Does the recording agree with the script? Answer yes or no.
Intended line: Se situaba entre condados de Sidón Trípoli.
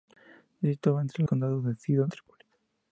yes